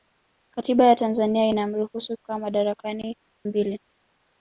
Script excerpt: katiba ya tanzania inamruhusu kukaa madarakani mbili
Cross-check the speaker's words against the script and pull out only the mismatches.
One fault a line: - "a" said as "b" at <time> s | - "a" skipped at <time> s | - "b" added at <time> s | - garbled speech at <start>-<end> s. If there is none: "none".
none